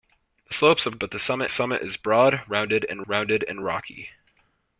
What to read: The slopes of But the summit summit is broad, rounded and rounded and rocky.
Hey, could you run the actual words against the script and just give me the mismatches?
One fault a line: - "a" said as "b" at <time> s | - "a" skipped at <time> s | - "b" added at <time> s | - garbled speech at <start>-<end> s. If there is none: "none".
none